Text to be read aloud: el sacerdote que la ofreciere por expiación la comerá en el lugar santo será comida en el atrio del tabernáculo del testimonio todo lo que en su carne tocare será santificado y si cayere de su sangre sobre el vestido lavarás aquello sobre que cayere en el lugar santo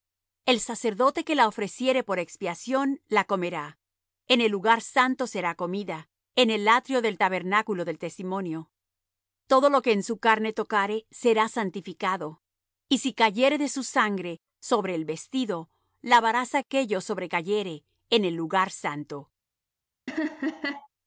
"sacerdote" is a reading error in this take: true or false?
false